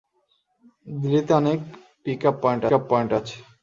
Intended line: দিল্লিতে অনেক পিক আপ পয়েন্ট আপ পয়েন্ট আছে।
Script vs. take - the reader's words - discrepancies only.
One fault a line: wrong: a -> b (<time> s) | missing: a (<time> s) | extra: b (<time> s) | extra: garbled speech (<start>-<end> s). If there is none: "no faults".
no faults